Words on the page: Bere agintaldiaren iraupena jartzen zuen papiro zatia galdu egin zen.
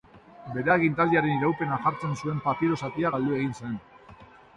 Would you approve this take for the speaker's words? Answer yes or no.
yes